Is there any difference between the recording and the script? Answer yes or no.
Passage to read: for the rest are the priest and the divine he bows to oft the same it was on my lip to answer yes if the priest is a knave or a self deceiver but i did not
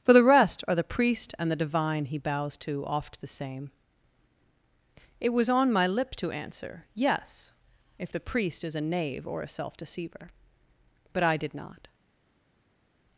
no